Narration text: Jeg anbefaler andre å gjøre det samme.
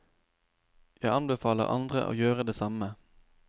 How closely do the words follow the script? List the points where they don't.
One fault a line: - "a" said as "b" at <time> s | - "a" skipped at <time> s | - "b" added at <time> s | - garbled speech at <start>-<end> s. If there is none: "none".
none